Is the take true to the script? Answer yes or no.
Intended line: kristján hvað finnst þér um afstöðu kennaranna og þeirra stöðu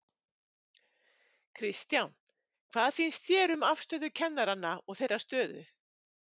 yes